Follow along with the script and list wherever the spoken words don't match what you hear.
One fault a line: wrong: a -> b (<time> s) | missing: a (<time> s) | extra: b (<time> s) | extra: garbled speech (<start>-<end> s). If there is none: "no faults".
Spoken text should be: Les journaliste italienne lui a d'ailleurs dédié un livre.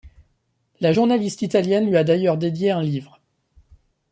wrong: Les -> La (0.8 s)